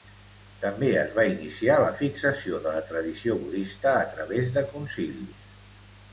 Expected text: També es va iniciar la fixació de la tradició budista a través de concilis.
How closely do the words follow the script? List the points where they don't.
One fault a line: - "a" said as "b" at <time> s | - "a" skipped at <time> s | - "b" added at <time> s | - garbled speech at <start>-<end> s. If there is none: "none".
none